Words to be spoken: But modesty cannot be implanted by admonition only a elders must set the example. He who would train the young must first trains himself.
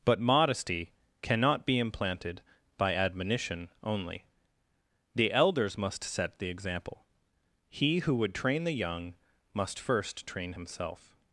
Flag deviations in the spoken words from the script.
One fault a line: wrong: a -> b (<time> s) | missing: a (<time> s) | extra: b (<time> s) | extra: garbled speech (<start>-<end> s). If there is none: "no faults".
wrong: a -> the (5.1 s)
wrong: trains -> train (10.2 s)